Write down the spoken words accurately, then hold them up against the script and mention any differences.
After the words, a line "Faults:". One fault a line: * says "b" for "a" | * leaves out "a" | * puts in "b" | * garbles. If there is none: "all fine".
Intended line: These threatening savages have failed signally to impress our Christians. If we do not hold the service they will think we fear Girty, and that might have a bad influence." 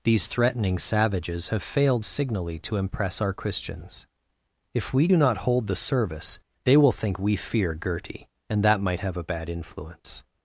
These threatening savages have failed signally to impress our Christians. If we do not hold the service they will think we fear Girty, and that might have a bad influence."
Faults:
all fine